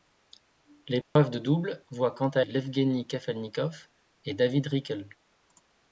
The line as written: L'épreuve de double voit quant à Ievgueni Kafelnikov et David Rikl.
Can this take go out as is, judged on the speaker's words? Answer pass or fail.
pass